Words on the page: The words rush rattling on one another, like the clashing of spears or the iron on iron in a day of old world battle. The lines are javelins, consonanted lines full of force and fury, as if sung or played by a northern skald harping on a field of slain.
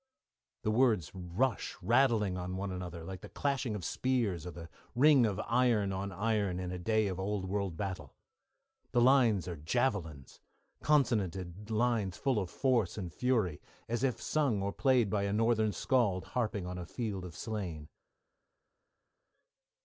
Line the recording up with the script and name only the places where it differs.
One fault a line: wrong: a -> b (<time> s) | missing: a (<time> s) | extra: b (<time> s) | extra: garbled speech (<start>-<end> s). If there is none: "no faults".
extra: ring of (5.0 s)